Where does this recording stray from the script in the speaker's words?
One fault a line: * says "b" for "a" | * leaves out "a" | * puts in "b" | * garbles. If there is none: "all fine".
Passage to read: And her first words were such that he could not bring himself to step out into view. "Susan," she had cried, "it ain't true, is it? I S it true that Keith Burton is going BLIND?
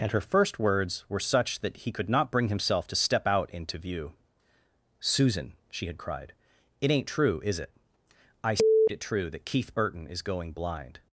all fine